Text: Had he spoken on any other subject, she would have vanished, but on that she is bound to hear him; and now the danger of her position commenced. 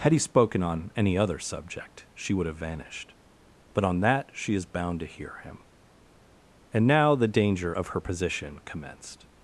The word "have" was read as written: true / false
true